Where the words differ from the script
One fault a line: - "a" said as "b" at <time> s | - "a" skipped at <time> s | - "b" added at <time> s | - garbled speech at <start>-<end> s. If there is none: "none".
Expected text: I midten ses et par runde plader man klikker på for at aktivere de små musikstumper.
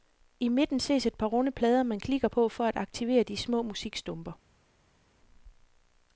none